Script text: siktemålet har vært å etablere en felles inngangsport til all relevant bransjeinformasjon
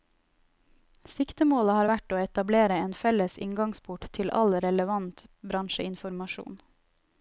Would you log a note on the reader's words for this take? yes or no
no